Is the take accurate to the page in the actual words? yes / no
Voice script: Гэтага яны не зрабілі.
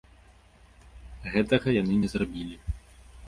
yes